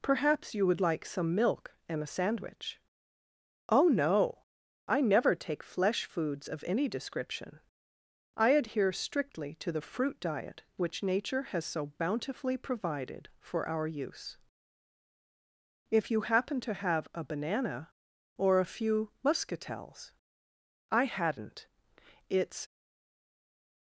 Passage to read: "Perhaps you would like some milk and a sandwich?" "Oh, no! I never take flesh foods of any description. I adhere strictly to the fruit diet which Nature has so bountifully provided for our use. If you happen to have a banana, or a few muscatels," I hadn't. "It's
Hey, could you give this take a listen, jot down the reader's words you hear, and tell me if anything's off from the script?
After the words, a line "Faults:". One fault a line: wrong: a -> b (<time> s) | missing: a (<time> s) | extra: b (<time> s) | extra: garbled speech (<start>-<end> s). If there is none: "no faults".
"Perhaps you would like some milk and a sandwich?" "Oh, no! I never take flesh foods of any description. I adhere strictly to the fruit diet which Nature has so bountifully provided for our use. If you happen to have a banana, or a few muscatels," I hadn't. "It's
Faults:
no faults